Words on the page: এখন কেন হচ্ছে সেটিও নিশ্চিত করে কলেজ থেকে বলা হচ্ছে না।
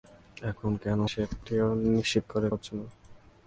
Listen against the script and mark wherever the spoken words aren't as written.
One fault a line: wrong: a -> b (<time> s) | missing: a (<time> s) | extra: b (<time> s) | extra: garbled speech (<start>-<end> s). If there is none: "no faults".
missing: হচ্ছে (1.0 s)
missing: কলেজ থেকে বলা (2.5 s)